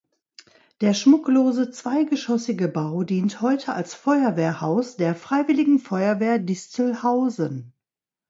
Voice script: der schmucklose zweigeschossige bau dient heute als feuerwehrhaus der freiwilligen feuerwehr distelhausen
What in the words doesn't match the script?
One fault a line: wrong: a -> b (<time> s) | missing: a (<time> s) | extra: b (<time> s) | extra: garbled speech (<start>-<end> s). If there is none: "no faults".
no faults